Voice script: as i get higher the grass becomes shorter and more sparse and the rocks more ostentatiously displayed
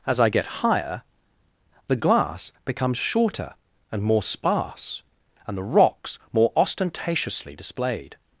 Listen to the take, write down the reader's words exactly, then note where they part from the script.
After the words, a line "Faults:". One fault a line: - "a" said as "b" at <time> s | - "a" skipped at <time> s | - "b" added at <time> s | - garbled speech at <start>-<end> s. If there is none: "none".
as i get higher the glass becomes shorter and more sparse and the rocks more ostentatiously displayed
Faults:
- "grass" said as "glass" at 1.9 s